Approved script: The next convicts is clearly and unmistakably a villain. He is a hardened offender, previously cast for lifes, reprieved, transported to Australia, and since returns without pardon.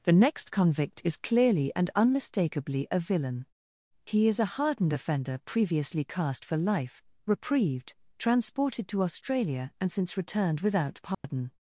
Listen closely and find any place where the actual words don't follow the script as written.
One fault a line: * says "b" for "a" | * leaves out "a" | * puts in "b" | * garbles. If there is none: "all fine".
* says "convict" for "convicts"
* says "life" for "lifes"
* says "returned" for "returns"